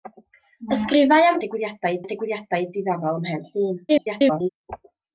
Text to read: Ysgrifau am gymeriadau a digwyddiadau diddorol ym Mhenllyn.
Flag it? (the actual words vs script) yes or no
yes